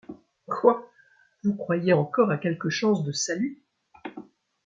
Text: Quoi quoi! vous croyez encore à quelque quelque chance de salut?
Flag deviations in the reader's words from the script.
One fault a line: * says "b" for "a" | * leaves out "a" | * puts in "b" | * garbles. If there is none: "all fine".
* leaves out "quoi"
* leaves out "quelque"